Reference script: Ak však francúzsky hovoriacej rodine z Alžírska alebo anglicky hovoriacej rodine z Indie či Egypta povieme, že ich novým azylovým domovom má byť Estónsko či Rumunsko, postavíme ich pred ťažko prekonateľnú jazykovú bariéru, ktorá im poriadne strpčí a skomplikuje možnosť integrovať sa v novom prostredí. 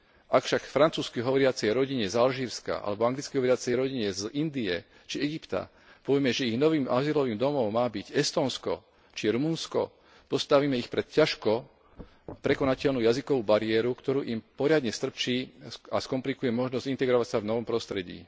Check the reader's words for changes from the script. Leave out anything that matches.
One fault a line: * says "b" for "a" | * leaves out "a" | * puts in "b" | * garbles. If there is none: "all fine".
all fine